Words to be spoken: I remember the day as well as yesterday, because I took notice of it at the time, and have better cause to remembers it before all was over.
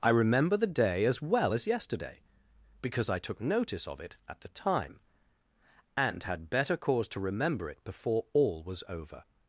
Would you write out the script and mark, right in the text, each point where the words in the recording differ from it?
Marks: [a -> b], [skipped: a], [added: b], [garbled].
I remember the day as well as yesterday, because I took notice of it at the time, and [have -> had] better cause to [remembers -> remember] it before all was over.